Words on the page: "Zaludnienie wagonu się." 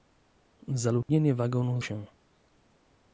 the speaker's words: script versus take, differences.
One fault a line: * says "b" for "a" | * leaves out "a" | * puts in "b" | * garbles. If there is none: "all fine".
all fine